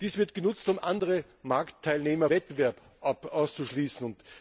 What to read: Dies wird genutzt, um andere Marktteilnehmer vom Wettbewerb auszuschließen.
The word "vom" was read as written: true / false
false